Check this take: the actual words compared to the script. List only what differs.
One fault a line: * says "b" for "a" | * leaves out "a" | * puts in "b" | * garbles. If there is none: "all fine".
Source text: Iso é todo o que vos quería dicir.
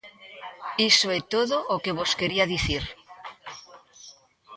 all fine